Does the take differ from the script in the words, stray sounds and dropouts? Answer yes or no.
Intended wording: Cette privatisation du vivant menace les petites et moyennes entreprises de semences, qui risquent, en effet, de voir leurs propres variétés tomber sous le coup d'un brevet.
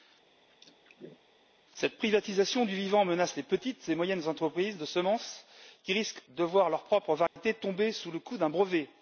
yes